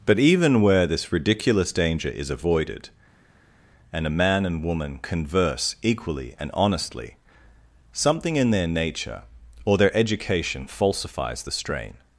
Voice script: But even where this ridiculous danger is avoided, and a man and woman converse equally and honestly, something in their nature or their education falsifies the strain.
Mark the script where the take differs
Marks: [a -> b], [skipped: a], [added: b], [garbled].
But even where this ridiculous danger is avoided, and a man and woman converse equally and honestly, something in their nature or their education falsifies the strain.